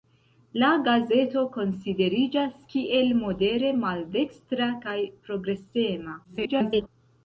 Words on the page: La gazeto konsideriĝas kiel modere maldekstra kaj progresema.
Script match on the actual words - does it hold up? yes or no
no